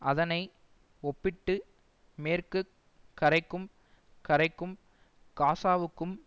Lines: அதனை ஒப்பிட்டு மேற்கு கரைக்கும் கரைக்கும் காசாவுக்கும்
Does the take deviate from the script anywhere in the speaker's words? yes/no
no